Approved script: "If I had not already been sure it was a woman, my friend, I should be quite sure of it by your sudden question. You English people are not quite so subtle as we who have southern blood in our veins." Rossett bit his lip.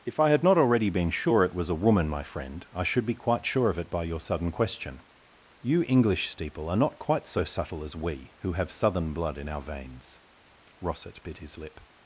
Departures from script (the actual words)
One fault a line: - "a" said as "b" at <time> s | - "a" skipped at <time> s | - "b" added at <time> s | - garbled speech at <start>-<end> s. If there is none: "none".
- "people" said as "steeple" at 6.3 s